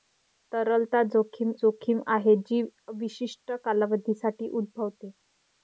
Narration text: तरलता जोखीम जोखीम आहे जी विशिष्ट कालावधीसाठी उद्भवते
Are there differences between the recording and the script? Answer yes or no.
no